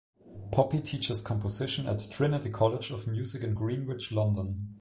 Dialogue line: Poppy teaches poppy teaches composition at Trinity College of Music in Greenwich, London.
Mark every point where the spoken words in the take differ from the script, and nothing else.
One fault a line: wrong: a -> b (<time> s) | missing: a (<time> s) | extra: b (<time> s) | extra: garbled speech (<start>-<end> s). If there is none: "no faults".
missing: poppy teaches (1.2 s)